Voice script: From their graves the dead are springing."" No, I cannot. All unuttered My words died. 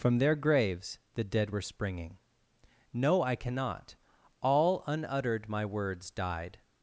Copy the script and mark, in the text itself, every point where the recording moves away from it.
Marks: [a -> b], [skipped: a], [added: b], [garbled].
From their graves the dead [are -> were] springing."" No, I cannot. All unuttered My words died.